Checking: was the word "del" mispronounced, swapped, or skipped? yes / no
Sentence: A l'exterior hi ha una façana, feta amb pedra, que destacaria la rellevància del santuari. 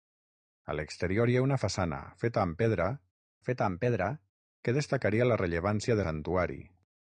yes